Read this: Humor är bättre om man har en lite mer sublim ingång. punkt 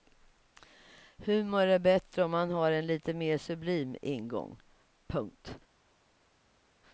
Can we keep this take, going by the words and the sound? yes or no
yes